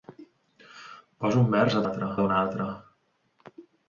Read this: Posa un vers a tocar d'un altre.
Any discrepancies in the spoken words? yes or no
yes